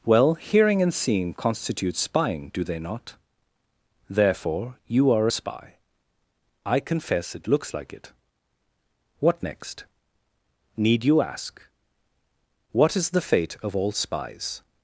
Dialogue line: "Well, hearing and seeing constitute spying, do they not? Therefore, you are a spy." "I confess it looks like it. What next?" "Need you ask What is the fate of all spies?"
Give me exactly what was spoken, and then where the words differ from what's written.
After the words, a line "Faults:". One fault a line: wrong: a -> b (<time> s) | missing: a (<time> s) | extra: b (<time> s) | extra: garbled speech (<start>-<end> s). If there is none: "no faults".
"Well, hearing and seeing constitute spying, do they not? Therefore, you are a spy." "I confess it looks like it. What next?" "Need you ask What is the fate of all spies?"
Faults:
no faults